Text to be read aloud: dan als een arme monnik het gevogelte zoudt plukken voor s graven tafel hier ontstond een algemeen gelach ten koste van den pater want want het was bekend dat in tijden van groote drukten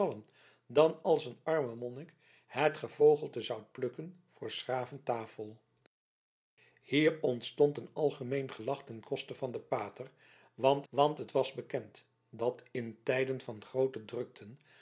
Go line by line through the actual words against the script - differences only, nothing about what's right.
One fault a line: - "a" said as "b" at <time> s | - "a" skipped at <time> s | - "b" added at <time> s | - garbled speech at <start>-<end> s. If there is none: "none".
none